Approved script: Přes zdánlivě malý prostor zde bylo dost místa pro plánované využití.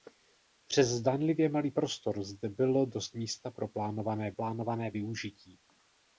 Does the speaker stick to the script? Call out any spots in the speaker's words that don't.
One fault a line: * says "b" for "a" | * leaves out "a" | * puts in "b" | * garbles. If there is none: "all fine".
* puts in "plánované"